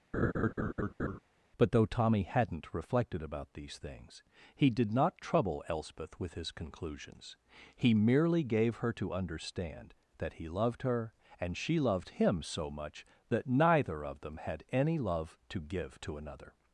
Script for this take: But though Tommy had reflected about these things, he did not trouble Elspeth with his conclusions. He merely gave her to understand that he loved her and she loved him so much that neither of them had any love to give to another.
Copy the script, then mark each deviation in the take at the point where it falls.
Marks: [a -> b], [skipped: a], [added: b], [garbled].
But though Tommy [had -> hadn't] reflected about these things, he did not trouble Elspeth with his conclusions. He merely gave her to understand that he loved her and she loved him so much that neither of them had any love to give to another.